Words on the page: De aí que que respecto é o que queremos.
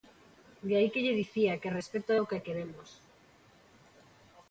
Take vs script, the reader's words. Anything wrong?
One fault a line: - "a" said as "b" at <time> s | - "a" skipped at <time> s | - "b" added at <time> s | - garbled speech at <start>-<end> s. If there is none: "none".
- "lle dicía" added at 1.1 s